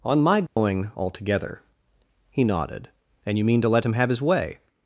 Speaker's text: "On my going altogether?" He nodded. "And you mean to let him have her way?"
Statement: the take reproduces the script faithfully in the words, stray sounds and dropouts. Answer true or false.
false